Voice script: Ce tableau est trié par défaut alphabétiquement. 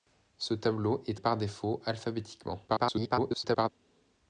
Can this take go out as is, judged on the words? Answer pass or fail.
fail